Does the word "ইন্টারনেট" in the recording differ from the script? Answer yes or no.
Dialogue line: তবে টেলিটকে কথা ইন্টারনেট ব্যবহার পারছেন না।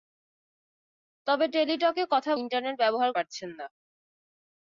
no